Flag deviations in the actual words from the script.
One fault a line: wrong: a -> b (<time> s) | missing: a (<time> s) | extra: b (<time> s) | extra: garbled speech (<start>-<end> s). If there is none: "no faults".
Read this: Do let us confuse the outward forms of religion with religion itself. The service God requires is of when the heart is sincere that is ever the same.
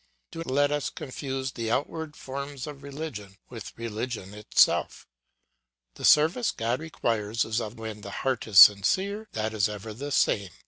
no faults